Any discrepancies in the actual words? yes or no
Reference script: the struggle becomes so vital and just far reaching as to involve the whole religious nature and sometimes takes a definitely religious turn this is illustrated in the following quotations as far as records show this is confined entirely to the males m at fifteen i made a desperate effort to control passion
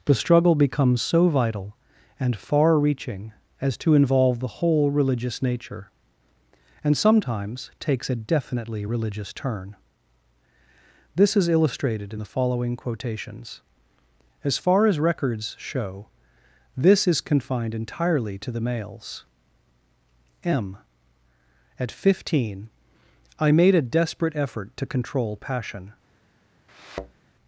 yes